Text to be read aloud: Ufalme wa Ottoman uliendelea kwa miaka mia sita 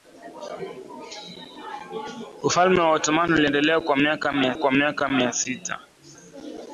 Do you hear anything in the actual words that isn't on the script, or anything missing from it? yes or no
yes